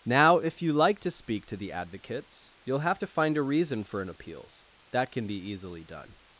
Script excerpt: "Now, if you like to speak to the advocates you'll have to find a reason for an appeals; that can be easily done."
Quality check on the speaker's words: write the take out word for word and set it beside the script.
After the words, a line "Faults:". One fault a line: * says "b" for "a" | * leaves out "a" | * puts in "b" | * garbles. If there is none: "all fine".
"Now, if you like to speak to the advocates you'll have to find a reason for an appeals; that can be easily done."
Faults:
all fine